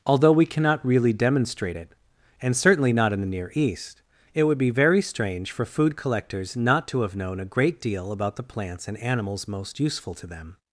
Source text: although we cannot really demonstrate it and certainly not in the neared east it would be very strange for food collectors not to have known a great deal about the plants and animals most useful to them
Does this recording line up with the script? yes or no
no